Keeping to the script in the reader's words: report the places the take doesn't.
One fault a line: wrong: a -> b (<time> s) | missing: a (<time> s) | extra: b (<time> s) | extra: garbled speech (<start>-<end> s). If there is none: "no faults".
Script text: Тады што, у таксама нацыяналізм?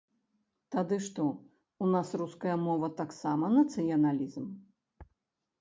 extra: нас руская мова (1.9 s)